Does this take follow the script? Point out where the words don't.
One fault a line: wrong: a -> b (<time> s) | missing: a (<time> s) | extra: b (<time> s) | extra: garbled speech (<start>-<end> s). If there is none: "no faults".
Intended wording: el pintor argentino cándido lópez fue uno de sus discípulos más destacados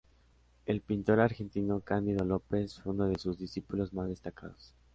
no faults